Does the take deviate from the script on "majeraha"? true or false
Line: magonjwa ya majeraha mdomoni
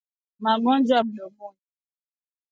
true